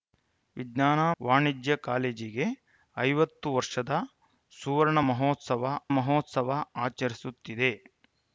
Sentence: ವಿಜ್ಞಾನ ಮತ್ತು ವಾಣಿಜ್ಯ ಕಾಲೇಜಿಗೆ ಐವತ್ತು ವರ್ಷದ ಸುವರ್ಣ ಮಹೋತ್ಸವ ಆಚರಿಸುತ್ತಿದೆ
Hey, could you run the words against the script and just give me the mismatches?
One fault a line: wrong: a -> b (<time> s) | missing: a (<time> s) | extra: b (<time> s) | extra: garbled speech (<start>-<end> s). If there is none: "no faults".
missing: ಮತ್ತು (1.0 s)
extra: ಮಹೋತ್ಸವ (6.0 s)